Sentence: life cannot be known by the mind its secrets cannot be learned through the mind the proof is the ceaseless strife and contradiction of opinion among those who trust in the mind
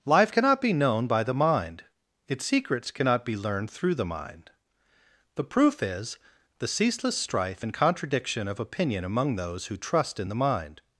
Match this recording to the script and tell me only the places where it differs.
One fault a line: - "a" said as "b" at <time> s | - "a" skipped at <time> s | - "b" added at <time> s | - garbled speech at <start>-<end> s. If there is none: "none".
none